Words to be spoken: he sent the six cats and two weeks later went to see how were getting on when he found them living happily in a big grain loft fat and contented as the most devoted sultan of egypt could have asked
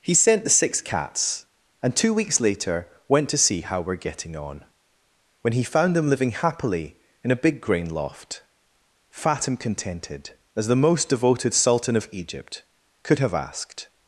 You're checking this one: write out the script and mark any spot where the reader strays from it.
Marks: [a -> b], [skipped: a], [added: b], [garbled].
he sent the six cats and two weeks later went to see how were getting on when he found them living happily in a big grain loft fat and contented as the most devoted sultan of egypt could have asked